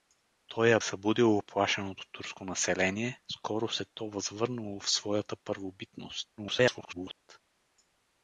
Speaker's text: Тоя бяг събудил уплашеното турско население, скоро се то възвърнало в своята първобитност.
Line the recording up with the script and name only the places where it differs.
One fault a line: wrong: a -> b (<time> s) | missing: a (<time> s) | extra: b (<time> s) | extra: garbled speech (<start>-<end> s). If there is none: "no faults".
missing: бяг (0.8 s)
extra: garbled speech (6.4-7.2 s)